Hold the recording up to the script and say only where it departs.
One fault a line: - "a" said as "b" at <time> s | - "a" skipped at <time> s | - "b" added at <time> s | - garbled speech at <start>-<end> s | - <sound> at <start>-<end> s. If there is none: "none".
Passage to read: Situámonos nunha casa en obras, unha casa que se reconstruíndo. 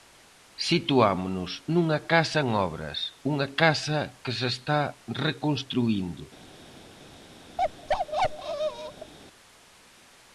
- "está" added at 4.5 s
- bark at 7.6-9.1 s